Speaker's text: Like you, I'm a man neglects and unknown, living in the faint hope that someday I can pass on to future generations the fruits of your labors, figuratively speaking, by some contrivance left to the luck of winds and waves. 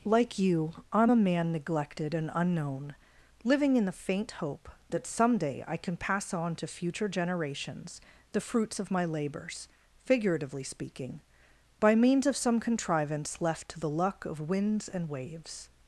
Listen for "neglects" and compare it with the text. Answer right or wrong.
wrong